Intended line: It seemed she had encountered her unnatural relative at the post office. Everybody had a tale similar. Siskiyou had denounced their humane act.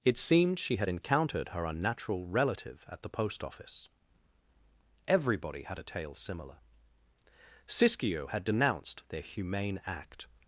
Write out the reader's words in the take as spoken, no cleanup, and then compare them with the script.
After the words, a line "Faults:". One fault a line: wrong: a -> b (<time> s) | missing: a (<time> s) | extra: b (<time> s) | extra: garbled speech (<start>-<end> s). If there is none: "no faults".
It seemed she had encountered her unnatural relative at the post office. Everybody had a tale similar. Siskiyou had denounced their humane act.
Faults:
no faults